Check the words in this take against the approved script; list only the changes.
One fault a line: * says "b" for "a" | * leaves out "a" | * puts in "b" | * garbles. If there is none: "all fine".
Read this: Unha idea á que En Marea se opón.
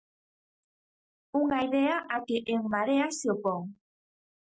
all fine